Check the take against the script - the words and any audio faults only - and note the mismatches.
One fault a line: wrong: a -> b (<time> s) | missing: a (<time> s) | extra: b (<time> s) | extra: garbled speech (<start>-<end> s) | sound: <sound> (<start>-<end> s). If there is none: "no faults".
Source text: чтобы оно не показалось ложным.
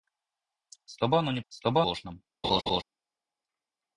wrong: показалось -> чтобы (1.5 s)
sound: laugh (2.4-2.8 s)